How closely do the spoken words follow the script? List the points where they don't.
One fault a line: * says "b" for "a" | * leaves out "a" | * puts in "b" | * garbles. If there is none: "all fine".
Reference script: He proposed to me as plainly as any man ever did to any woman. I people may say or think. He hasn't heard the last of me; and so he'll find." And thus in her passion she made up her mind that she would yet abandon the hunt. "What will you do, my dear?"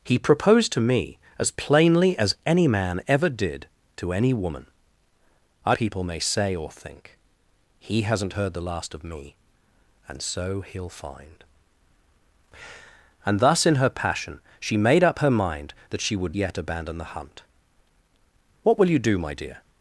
all fine